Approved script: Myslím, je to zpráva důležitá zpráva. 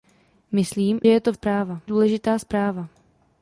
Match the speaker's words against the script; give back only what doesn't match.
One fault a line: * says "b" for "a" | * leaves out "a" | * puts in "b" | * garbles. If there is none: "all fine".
all fine